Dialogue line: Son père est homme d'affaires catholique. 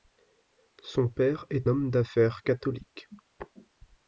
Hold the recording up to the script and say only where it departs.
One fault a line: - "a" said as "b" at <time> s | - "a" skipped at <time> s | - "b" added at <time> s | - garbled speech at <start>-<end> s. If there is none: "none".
none